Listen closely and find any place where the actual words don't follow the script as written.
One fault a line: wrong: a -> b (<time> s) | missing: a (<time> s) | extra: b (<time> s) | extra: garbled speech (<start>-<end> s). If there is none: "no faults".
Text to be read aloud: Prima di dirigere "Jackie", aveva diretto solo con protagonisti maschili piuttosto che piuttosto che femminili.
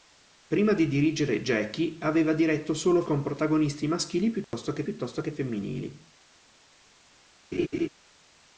no faults